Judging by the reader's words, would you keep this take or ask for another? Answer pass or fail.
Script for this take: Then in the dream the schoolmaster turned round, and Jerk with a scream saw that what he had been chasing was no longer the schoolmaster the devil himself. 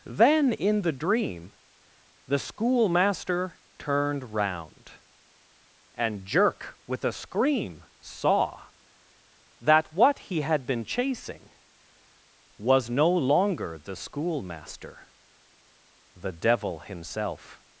pass